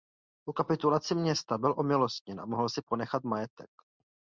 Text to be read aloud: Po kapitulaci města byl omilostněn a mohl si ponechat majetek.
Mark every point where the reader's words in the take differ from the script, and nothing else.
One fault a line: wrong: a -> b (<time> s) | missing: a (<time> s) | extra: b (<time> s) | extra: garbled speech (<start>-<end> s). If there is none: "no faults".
no faults